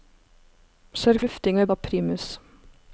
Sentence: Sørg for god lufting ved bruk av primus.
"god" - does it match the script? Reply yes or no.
no